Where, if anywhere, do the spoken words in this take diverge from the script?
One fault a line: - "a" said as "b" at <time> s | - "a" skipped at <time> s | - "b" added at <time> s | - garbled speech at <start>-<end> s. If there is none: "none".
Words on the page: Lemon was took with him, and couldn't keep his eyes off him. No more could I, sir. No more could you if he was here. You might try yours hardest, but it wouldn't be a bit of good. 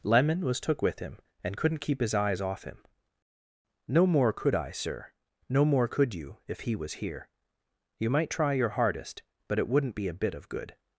- "yours" said as "your" at 8.5 s